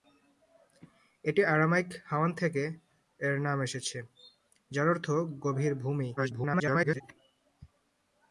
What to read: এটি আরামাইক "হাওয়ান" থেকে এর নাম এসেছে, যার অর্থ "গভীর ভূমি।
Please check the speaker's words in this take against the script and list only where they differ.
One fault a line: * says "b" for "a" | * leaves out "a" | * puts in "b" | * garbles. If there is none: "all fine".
* garbles